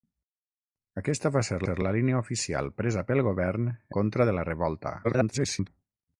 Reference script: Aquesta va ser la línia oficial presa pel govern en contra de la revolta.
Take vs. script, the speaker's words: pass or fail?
fail